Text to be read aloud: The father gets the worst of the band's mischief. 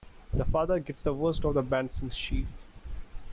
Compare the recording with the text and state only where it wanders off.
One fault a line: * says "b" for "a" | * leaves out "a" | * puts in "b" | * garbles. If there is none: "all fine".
all fine